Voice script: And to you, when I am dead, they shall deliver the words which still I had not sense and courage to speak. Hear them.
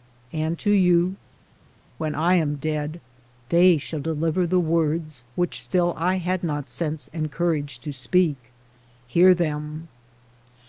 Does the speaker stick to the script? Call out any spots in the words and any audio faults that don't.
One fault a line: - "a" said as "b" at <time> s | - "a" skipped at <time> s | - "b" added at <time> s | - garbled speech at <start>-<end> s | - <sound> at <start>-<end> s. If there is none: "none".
none